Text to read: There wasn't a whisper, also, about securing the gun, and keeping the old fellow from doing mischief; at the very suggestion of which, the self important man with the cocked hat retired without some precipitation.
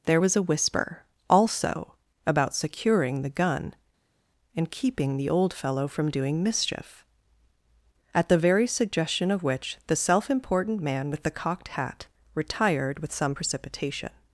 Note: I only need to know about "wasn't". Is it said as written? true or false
false